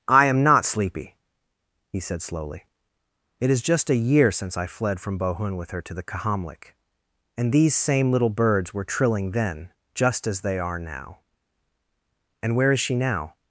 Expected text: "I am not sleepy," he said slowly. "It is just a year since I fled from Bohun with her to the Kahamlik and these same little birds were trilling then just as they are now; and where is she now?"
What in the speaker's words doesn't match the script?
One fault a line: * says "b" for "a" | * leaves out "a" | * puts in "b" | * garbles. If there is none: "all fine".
all fine